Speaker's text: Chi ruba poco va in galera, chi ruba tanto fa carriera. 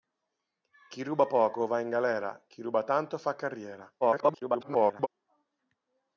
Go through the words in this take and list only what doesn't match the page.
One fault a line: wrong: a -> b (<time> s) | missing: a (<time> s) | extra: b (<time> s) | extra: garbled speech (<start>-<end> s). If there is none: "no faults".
extra: garbled speech (4.0-5.1 s)